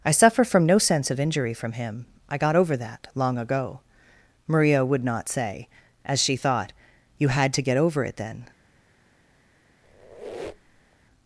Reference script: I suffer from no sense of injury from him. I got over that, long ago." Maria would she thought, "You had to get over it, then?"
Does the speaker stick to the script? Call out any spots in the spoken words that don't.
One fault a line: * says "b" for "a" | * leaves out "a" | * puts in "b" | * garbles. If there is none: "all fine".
* puts in "not say as"